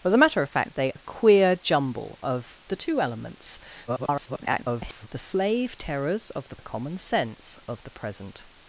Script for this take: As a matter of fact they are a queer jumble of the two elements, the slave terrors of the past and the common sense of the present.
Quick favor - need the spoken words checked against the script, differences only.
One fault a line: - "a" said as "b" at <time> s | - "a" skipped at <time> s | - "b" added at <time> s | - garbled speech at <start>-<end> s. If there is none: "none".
- "are" skipped at 0.9 s
- garbled speech at 3.9-5.1 s
- "past and" skipped at 6.6 s